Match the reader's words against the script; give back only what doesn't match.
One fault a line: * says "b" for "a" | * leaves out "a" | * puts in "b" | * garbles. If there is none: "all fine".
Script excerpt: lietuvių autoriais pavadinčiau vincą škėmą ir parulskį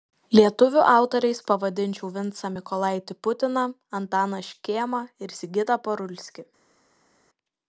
* puts in "mykolaitį putiną antaną"
* puts in "sigitą"